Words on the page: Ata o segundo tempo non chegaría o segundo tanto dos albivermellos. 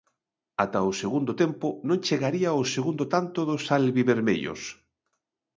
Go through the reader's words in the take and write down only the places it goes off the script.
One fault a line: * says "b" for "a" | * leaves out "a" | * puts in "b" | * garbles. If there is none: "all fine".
all fine